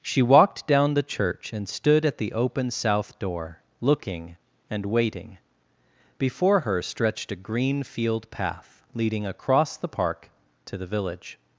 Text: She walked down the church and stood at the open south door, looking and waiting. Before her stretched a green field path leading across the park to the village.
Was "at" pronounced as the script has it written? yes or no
yes